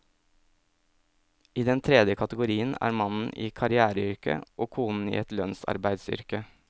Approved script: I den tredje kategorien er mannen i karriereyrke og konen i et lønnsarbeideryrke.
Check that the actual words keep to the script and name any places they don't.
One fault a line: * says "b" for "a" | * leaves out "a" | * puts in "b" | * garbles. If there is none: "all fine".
all fine